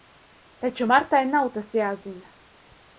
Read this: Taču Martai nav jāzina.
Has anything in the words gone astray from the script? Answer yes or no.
yes